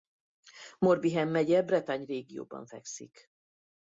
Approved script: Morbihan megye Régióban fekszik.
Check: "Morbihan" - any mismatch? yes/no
no